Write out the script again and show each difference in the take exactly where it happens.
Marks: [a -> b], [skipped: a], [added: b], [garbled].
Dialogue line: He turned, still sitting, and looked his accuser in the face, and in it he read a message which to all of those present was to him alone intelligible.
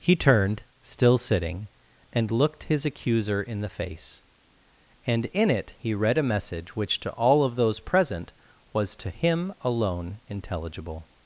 He turned, still sitting, and looked his accuser in the face, and in it he read a message which to all of those present was to him alone intelligible.